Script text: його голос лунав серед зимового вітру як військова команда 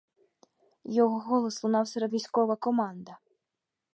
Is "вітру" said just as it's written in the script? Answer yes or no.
no